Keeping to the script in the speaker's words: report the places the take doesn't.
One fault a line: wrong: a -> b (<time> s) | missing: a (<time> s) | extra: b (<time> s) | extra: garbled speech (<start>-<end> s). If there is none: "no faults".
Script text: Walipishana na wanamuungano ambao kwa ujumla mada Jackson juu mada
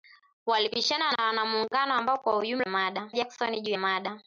no faults